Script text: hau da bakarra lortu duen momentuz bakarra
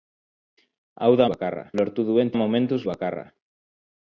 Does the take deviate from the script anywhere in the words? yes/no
no